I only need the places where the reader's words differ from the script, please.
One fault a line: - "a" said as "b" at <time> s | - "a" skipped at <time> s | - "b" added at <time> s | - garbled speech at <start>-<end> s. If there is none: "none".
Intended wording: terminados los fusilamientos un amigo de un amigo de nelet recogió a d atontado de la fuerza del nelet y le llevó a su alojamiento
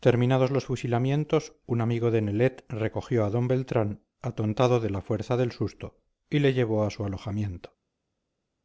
- "un amigo de" skipped at 2.2 s
- "beltrán" added at 3.5 s
- "nelet" said as "susto" at 5.5 s